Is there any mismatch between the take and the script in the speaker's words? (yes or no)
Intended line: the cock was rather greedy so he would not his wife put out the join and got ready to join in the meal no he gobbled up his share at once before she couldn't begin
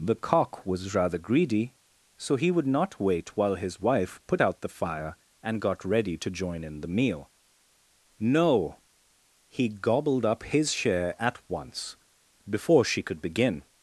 yes